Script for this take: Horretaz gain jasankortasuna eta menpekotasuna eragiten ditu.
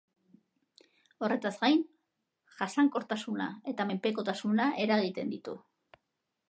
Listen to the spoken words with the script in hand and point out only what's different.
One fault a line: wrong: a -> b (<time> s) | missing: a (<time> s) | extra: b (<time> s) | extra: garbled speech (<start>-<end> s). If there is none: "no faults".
no faults